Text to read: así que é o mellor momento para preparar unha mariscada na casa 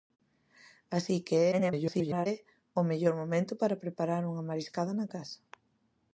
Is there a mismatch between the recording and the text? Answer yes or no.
yes